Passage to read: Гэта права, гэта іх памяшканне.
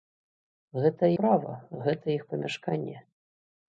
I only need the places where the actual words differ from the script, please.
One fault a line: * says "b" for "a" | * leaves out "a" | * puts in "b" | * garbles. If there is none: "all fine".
all fine